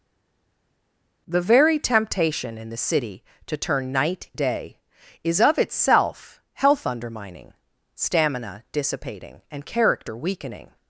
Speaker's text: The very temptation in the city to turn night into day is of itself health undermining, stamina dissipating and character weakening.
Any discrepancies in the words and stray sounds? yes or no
yes